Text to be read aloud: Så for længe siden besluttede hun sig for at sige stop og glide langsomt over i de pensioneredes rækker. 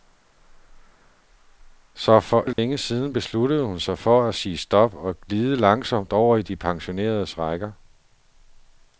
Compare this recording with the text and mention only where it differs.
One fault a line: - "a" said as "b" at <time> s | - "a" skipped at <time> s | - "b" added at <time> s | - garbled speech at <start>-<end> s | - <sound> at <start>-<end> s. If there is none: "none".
- dropout at 2.5-2.6 s